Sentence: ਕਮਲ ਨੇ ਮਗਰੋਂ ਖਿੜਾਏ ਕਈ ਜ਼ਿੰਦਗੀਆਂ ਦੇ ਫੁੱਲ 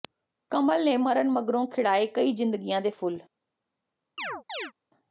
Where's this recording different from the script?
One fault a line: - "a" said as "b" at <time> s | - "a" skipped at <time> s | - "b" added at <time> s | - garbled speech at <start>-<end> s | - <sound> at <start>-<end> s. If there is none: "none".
- "ਮਰਨ" added at 1.0 s
- chirp at 4.2-4.7 s